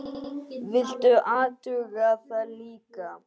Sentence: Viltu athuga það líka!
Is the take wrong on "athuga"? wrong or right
right